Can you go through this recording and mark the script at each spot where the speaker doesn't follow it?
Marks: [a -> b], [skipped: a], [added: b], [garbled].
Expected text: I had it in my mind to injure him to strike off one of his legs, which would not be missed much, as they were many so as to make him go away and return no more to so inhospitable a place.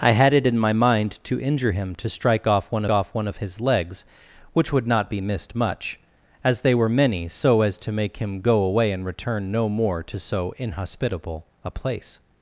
I had it in my mind to injure him to strike off one [added: off one] of his legs, which would not be missed much, as they were many so as to make him go away and return no more to so inhospitable a place.